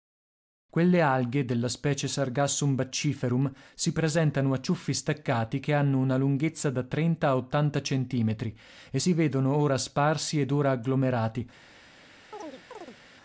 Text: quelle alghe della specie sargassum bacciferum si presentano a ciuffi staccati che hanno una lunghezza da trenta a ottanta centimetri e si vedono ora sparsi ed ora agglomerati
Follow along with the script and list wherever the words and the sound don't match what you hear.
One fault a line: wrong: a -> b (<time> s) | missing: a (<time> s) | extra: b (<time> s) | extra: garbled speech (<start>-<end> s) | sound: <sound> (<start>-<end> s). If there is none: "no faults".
sound: chirp (12.3-13.0 s)